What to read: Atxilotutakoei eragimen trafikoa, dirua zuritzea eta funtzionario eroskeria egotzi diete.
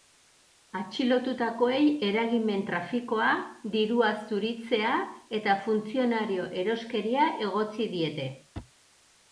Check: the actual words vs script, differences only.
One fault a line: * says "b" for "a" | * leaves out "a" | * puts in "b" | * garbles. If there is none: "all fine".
all fine